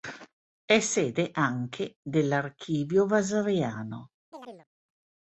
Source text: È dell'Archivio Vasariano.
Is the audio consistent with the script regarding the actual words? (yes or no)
no